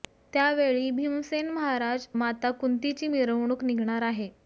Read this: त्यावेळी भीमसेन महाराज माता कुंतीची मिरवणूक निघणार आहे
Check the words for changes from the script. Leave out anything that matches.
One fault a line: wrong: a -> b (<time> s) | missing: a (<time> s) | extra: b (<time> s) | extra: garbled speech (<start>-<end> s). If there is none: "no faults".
no faults